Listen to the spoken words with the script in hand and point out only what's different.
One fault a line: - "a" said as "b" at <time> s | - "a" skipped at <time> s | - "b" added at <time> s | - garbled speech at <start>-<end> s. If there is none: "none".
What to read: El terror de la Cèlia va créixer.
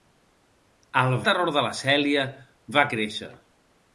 none